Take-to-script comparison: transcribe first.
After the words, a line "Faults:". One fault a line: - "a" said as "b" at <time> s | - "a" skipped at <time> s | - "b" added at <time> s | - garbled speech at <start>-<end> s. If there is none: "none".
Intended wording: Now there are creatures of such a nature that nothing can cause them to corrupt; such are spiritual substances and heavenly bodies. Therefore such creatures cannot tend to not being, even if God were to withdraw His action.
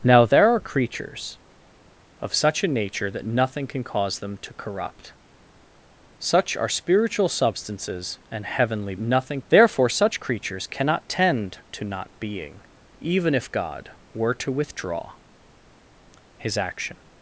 Now there are creatures of such a nature that nothing can cause them to corrupt; such are spiritual substances and heavenly nothing. Therefore such creatures cannot tend to not being, even if God were to withdraw His action.
Faults:
- "bodies" said as "nothing" at 9.0 s